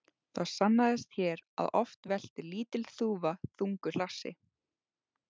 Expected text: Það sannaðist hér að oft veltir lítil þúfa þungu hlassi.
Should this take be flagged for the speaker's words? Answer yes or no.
no